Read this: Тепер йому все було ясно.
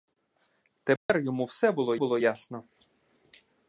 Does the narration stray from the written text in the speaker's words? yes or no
yes